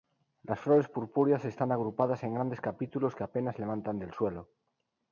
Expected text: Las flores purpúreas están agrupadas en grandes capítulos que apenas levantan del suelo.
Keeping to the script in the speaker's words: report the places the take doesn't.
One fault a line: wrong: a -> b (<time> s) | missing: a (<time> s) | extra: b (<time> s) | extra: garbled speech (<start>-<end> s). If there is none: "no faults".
no faults